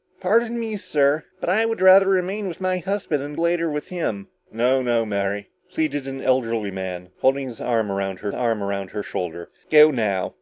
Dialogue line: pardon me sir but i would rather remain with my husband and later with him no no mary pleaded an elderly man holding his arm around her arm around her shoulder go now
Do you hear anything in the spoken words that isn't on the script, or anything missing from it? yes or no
no